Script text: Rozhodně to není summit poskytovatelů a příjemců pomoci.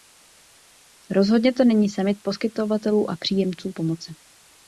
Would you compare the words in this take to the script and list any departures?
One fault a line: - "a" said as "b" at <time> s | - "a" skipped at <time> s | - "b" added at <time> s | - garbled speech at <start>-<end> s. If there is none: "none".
none